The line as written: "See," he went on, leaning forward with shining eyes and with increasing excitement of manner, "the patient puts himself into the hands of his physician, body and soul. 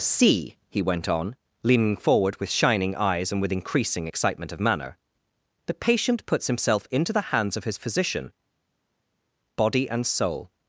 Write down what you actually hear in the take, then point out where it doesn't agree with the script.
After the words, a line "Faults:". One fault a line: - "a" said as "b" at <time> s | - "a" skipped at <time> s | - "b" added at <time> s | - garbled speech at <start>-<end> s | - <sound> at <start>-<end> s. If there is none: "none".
"See," he went on, leaning forward with shining eyes and with increasing excitement of manner, "the patient puts himself into the hands of his physician, body and soul.
Faults:
none